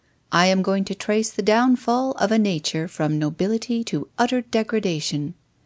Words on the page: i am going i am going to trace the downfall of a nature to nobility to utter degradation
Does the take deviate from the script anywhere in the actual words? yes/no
yes